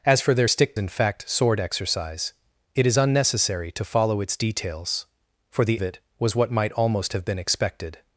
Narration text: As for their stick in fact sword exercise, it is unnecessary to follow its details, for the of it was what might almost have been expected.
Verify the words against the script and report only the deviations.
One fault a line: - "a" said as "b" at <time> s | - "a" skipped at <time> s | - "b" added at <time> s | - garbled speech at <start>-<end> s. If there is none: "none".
none